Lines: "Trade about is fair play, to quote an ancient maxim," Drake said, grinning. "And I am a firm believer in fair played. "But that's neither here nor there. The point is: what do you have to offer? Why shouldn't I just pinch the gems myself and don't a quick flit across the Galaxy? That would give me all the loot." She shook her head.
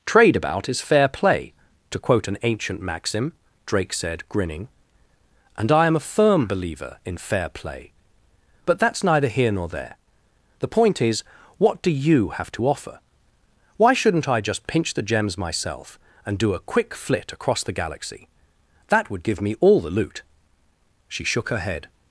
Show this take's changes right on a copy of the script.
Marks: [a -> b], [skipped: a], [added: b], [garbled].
"Trade about is fair play, to quote an ancient maxim," Drake said, grinning. "And I am a firm believer in fair [played. -> play] "But that's neither here nor there. The point is: what do you have to offer? Why shouldn't I just pinch the gems myself and [don't -> do] a quick flit across the Galaxy? That would give me all the loot." She shook her head.